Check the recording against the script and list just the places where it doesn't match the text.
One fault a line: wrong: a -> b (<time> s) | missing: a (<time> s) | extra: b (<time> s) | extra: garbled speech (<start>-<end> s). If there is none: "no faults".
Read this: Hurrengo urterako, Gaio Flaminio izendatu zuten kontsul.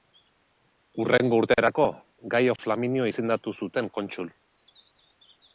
no faults